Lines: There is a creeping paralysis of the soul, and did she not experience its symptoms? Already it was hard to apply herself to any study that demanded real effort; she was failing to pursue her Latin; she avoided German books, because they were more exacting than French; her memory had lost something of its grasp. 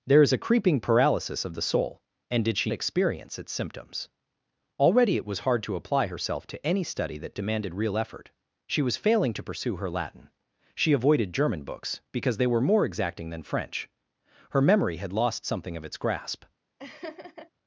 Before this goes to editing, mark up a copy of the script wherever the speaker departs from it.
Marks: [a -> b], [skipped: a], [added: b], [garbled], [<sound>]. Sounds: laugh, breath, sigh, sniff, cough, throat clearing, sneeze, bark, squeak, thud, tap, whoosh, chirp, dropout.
There is a creeping paralysis of the soul, and did she [skipped: not] experience its symptoms? Already it was hard to apply herself to any study that demanded real effort; she was failing to pursue her Latin; she avoided German books, because they were more exacting than French; her memory had lost something of its grasp. [laugh]